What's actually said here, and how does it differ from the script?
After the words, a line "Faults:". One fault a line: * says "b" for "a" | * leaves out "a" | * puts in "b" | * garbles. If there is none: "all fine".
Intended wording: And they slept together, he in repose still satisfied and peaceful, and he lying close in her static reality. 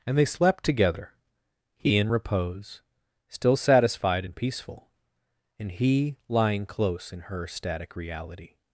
And they slept together, he in repose still satisfied and peaceful, and he lying close in her static reality.
Faults:
all fine